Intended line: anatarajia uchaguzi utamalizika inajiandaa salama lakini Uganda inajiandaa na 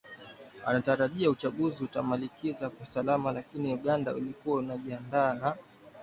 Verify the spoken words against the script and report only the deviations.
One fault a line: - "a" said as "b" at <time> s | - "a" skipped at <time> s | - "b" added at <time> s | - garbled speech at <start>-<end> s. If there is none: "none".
- "inajiandaa" said as "kwa" at 2.7 s
- "ilikuwa" added at 4.1 s